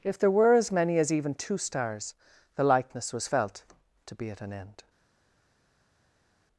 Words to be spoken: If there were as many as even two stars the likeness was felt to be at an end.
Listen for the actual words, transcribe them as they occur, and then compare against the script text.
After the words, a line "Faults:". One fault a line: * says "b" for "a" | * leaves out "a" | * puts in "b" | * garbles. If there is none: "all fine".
If there were as many as even two stars the likeness was felt to be at an end.
Faults:
all fine